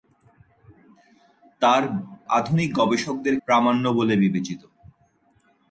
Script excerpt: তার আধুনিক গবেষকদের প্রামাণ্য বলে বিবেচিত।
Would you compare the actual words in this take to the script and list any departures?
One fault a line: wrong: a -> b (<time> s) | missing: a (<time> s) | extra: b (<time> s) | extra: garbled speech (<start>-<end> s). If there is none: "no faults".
no faults